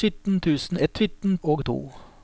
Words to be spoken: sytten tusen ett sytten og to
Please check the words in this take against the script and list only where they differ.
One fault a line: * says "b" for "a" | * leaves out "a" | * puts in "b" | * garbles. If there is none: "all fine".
all fine